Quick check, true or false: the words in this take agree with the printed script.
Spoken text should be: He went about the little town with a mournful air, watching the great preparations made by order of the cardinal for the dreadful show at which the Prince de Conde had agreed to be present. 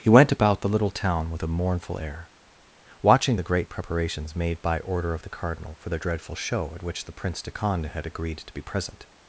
true